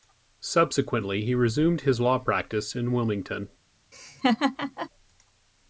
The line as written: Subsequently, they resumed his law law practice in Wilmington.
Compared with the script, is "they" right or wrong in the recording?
wrong